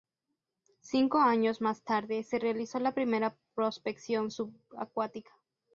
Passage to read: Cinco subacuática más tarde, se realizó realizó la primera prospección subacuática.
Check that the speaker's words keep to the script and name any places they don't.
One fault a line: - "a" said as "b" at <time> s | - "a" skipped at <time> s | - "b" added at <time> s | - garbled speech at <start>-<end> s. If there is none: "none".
- "subacuática" said as "años" at 1.2 s
- "realizó" skipped at 2.8 s